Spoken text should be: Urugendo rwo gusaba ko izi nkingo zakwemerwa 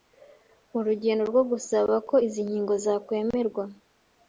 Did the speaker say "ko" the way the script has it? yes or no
yes